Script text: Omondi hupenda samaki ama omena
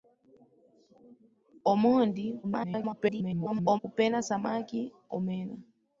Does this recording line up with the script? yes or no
no